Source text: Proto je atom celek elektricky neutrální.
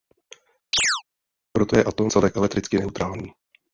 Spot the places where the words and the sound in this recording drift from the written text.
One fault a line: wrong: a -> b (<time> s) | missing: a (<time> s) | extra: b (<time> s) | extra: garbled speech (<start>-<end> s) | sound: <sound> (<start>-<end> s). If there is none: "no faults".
sound: chirp (0.7-1.0 s)